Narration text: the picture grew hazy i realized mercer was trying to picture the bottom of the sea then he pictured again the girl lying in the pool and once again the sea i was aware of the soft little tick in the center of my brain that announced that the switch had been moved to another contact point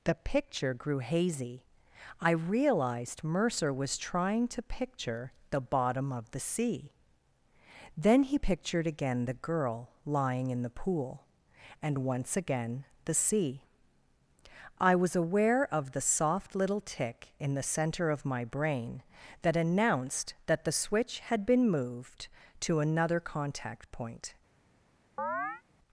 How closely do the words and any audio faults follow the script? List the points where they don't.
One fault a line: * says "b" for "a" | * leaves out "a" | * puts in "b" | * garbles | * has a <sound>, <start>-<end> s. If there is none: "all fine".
* has a chirp, 25.2-25.6 s